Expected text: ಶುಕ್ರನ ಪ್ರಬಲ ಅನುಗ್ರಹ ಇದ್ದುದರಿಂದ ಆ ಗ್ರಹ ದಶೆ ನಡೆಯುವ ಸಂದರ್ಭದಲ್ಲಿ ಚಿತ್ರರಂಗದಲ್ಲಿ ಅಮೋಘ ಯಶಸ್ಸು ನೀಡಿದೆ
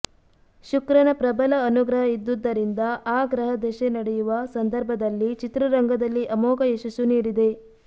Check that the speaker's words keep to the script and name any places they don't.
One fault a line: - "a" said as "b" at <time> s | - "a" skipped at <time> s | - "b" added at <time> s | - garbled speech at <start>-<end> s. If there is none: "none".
none